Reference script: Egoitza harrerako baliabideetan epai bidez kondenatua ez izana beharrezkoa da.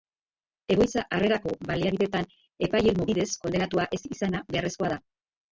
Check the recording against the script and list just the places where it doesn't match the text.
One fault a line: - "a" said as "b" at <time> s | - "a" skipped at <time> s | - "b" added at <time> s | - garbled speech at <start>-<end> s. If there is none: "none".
- "irmo" added at 2.9 s